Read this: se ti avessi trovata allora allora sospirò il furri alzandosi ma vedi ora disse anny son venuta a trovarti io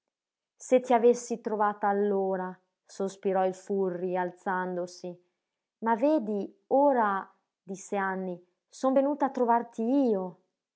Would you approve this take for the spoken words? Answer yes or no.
no